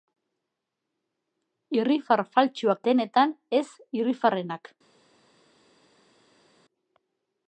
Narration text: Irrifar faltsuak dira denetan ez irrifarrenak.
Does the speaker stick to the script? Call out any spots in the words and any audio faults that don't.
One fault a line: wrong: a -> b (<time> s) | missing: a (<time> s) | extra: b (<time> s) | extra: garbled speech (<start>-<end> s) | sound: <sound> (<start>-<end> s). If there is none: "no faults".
missing: dira (2.8 s)